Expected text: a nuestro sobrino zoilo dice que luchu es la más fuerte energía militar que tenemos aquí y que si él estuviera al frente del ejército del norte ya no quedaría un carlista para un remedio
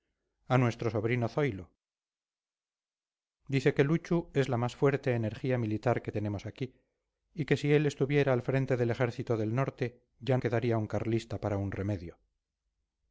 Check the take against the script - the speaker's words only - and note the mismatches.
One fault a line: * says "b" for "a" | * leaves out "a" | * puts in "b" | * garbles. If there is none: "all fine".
* leaves out "no"